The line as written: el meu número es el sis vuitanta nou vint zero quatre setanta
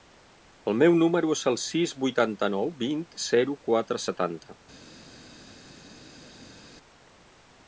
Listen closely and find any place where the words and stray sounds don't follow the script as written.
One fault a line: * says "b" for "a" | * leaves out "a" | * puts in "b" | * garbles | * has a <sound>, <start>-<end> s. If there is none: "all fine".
all fine